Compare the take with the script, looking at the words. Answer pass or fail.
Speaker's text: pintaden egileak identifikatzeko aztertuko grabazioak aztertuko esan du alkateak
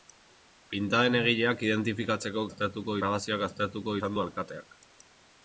pass